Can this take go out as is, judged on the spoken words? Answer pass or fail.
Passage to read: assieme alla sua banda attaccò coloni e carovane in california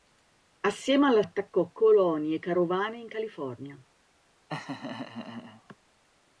fail